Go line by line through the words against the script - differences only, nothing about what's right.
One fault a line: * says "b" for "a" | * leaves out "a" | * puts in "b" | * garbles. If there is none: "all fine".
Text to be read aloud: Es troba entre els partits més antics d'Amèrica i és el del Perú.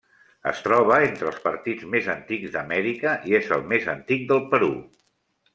* puts in "més antic"